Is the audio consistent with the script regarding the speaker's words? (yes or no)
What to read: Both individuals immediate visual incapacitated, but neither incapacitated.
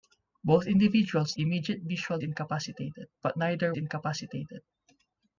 yes